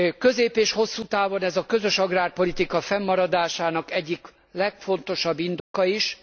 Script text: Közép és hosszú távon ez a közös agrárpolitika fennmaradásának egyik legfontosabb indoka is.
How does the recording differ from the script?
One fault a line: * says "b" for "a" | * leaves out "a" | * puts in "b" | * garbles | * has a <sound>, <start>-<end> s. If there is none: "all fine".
* has a dropout, 5.6-5.7 s